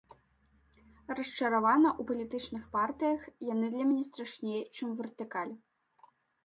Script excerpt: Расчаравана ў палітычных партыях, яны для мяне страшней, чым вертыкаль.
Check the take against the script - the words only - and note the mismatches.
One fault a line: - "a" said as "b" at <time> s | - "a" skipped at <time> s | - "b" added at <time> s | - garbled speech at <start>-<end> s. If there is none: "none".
none